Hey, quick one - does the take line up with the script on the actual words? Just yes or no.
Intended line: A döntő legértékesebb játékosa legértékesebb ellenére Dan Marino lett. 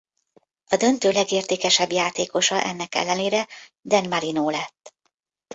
no